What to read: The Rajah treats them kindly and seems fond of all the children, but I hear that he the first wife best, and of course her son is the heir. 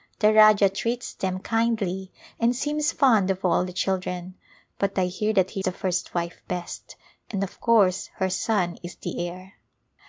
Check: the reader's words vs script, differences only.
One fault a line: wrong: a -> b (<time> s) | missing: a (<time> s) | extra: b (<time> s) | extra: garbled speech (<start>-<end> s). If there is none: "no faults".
no faults